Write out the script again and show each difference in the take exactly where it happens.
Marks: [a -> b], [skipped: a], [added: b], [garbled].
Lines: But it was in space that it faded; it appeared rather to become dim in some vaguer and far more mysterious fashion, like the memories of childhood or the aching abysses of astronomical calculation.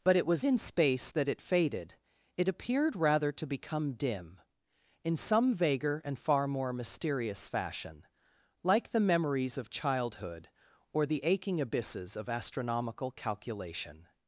But it was in space that it faded; it appeared rather to become dim in some vaguer and far more mysterious fashion, like the memories of childhood or the aching abysses of astronomical calculation.